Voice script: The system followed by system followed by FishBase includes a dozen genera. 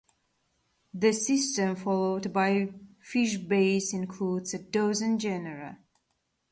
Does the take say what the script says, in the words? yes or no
no